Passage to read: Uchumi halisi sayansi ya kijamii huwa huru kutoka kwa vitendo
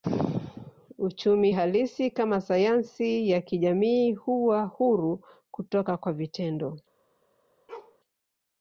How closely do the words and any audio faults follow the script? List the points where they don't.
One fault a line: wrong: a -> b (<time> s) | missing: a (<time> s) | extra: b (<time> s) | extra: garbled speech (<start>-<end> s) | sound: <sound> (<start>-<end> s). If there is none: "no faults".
extra: kama (2.1 s)
sound: bark (7.7-8.0 s)